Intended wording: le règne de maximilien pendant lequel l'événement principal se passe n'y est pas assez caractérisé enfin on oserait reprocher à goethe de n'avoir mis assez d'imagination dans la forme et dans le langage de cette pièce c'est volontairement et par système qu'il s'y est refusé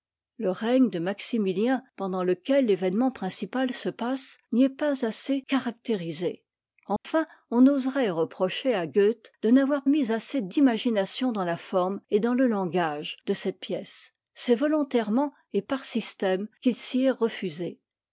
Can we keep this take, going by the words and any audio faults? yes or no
no